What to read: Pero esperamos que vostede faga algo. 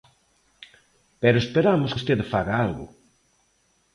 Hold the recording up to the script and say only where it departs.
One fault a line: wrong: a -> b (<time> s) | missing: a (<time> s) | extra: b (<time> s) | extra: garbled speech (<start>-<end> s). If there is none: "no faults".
missing: que (1.9 s)